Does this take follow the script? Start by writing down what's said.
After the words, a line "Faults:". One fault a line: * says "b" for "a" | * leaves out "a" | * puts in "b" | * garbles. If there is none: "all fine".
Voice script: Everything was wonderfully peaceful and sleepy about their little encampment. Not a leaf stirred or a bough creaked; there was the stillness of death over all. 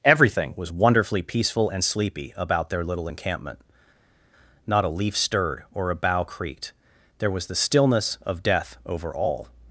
Everything was wonderfully peaceful and sleepy about their little encampment. Not a leaf stirred or a bough creaked; there was the stillness of death over all.
Faults:
all fine